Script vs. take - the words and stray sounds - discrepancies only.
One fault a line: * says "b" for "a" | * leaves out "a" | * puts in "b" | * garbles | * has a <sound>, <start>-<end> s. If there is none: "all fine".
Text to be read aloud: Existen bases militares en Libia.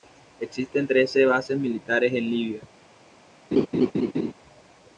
* puts in "trece"
* has a laugh, 3.5-4.3 s